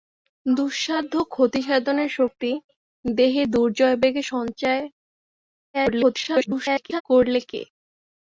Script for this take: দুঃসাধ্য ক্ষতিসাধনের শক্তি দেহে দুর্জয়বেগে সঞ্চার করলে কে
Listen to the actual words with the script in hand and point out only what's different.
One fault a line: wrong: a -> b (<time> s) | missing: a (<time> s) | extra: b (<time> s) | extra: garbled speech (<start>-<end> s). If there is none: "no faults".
extra: garbled speech (5.7-7.0 s)